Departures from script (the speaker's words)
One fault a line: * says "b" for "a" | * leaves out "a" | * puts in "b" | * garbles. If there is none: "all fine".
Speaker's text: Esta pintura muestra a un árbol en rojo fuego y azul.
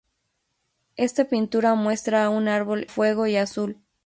* leaves out "en rojo"